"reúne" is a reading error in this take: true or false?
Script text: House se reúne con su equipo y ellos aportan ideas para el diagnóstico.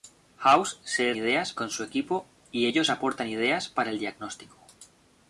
true